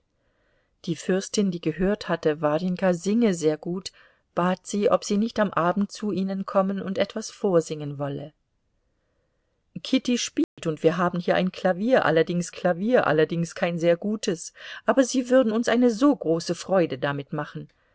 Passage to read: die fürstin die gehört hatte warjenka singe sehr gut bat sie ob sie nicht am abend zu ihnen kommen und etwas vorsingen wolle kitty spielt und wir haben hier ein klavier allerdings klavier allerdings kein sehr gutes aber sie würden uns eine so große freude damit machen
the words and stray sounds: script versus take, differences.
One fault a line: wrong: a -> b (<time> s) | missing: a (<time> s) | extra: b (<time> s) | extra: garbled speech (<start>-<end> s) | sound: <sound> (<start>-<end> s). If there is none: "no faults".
sound: dropout (10.4-10.6 s)